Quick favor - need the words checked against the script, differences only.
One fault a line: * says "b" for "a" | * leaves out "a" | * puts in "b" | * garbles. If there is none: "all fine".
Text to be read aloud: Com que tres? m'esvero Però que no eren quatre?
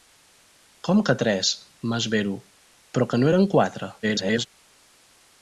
* garbles